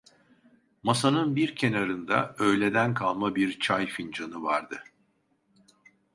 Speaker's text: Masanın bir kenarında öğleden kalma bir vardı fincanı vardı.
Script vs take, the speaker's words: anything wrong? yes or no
yes